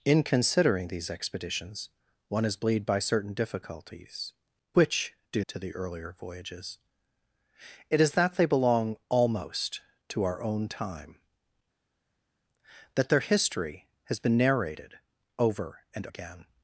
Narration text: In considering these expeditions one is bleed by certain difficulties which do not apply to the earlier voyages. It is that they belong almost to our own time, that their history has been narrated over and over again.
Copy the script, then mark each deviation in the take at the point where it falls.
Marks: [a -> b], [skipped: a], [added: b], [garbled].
In considering these expeditions one is bleed by certain difficulties which do [skipped: not apply] to the earlier voyages. It is that they belong almost to our own time, that their history has been narrated over and [skipped: over] again.